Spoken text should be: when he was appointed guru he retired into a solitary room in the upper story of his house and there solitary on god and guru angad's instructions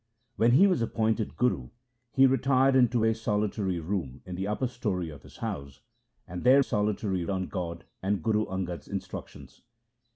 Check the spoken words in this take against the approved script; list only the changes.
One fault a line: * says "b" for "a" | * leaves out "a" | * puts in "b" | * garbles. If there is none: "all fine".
all fine